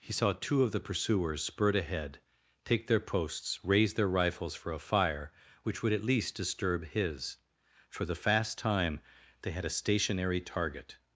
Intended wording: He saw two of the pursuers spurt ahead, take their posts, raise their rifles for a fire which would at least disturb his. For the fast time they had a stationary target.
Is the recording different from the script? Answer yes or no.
no